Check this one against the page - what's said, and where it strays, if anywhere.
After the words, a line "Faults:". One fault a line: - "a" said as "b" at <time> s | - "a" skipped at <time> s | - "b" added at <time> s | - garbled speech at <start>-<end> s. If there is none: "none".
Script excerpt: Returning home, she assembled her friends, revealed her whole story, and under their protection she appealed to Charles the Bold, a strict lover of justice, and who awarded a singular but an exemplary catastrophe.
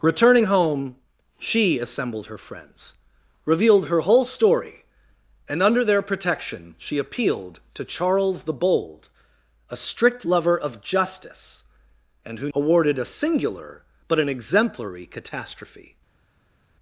Returning home, she assembled her friends, revealed her whole story, and under their protection she appealed to Charles the Bold, a strict lover of justice, and who awarded a singular but an exemplary catastrophe.
Faults:
none